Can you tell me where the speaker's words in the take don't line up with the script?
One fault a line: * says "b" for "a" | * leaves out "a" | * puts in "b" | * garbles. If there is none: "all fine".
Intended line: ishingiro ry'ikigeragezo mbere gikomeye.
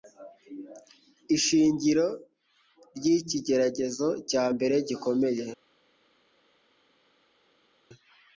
* puts in "cya"